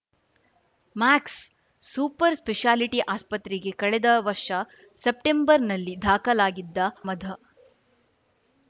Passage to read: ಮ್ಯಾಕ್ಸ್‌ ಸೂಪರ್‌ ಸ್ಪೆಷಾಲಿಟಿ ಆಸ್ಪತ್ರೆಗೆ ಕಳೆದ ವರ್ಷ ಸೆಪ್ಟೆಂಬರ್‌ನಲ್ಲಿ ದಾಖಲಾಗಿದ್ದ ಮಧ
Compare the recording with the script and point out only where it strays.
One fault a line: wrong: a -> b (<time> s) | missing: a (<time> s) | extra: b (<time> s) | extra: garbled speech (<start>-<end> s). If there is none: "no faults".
no faults